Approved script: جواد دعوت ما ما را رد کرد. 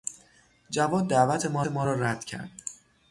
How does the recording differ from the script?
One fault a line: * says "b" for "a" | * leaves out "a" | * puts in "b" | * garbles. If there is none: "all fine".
all fine